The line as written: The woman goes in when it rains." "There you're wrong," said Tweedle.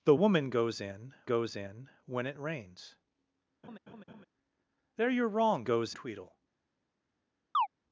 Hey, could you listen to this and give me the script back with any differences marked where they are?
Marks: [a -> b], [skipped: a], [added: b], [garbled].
The woman goes in [added: goes in] when it rains." "There you're wrong," [said -> goes] Tweedle.